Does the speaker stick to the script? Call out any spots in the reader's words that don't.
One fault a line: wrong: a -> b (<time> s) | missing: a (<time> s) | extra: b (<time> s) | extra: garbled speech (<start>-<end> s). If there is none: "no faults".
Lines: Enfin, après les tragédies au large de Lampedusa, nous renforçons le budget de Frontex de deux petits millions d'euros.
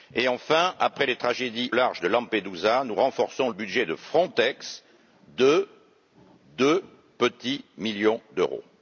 missing: au (1.7 s)
missing: le (3.5 s)